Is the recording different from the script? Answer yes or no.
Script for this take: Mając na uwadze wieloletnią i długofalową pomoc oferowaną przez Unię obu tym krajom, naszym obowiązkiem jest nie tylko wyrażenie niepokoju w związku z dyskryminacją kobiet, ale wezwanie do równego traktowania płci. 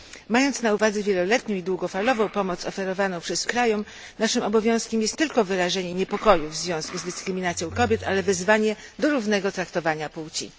yes